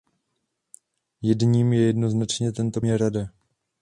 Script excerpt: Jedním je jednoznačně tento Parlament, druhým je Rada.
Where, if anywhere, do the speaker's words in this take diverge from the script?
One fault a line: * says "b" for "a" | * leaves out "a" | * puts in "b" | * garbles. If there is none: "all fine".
* leaves out "Parlament druhým"